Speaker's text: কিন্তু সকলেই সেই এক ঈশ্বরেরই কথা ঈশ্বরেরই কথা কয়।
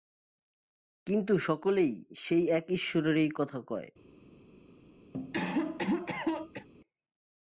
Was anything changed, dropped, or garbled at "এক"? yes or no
no